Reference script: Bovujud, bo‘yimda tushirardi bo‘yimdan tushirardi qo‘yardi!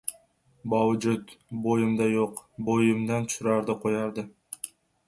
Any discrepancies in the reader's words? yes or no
yes